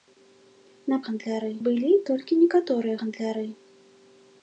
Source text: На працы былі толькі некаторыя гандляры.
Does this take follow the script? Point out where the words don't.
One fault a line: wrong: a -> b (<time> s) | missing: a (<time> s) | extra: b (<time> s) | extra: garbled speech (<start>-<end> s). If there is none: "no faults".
wrong: працы -> гандляры (1.1 s)